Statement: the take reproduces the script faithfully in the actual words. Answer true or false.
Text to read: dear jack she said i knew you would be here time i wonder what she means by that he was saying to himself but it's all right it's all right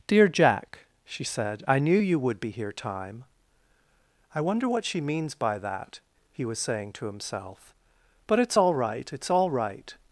true